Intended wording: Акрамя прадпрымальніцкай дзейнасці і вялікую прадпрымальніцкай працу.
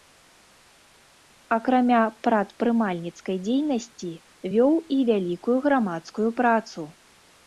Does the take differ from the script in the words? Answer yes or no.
yes